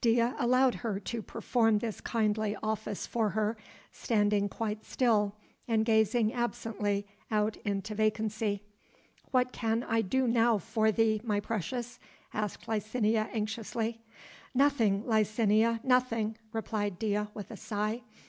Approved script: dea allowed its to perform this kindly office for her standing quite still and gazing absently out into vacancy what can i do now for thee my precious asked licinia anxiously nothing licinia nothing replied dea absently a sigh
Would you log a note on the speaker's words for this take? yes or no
yes